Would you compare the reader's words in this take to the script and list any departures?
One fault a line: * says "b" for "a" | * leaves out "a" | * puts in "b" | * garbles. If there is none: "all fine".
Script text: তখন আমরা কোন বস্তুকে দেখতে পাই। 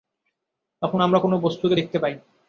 all fine